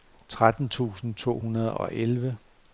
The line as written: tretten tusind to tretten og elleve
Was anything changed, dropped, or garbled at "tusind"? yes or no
no